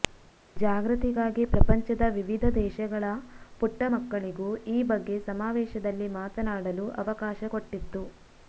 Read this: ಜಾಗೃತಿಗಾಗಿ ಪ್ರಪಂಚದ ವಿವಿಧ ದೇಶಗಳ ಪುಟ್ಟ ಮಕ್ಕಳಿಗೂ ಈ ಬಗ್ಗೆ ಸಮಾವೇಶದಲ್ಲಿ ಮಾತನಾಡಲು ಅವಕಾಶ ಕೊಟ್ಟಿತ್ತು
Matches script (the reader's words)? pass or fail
pass